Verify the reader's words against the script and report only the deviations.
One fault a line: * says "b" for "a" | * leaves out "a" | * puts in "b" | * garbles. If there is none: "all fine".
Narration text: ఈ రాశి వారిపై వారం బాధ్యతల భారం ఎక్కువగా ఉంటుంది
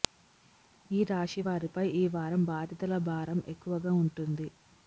* puts in "ఈ"